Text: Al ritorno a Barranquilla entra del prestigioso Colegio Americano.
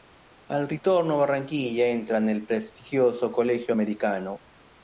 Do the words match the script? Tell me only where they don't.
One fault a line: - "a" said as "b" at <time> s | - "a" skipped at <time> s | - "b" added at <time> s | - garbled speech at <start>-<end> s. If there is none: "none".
- "del" said as "nel" at 2.2 s